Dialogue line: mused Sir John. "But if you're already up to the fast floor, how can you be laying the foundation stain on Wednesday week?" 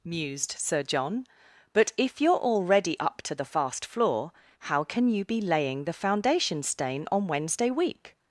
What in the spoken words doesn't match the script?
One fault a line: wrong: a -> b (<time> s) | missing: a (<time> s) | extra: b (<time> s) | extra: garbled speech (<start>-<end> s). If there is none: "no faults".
no faults